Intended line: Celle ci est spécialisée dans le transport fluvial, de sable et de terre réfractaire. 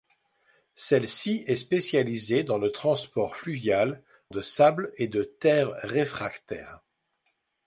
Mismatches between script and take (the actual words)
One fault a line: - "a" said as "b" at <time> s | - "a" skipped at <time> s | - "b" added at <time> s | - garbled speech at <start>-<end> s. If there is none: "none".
none